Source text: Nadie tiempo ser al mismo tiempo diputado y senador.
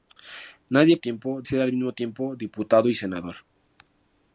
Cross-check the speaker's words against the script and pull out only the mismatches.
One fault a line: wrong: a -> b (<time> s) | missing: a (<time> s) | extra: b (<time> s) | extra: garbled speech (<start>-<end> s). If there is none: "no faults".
no faults